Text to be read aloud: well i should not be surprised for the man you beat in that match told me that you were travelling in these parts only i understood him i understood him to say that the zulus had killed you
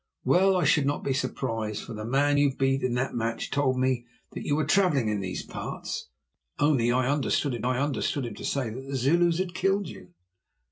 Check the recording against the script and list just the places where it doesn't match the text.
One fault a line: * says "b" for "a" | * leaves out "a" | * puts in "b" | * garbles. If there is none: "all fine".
all fine